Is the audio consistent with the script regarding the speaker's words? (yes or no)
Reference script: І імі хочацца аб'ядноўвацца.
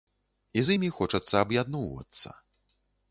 no